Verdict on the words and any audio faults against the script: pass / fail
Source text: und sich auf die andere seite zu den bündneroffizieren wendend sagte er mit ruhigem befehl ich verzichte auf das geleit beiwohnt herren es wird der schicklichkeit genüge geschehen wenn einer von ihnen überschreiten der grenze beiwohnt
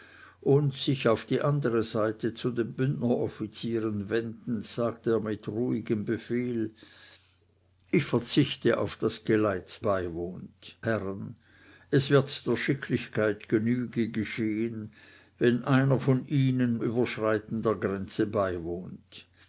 pass